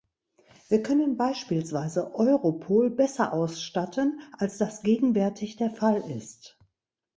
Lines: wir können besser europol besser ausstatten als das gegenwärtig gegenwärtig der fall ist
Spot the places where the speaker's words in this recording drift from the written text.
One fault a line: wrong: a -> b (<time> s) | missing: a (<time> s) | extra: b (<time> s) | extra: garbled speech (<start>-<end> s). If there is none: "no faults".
wrong: besser -> beispielsweise (1.1 s)
missing: gegenwärtig (5.6 s)